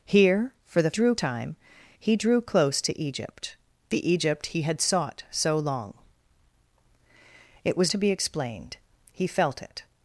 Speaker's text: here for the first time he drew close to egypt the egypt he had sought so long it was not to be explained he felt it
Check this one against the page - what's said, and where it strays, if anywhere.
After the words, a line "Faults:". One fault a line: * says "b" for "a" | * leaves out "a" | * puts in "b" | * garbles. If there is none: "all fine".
here for the drew time he drew close to egypt the egypt he had sought so long it was to be explained he felt it
Faults:
* says "drew" for "first"
* leaves out "not"